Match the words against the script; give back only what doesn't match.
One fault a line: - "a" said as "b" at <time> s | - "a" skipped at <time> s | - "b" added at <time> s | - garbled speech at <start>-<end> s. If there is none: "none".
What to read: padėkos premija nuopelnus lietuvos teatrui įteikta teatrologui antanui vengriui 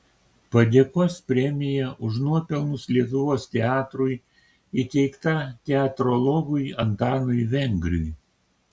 - "už" added at 2.1 s